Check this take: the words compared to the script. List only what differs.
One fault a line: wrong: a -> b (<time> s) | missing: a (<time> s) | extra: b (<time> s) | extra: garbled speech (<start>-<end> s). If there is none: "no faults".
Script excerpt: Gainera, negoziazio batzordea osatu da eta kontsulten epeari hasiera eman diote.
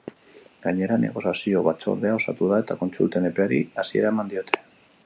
no faults